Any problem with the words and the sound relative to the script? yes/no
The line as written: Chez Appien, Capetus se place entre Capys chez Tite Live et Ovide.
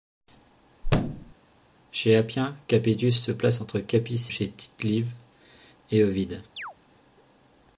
yes